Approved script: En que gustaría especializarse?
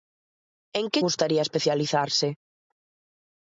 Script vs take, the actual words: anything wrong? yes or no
no